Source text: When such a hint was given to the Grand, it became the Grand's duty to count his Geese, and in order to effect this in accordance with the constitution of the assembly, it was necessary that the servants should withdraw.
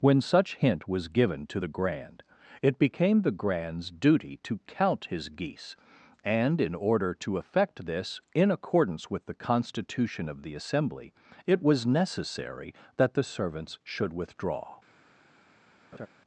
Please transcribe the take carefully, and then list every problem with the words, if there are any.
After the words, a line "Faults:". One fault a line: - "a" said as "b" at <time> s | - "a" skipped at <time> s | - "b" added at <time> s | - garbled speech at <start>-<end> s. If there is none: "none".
When such hint was given to the Grand, it became the Grand's duty to count his Geese, and in order to effect this in accordance with the constitution of the assembly, it was necessary that the servants should withdraw.
Faults:
- "a" skipped at 0.6 s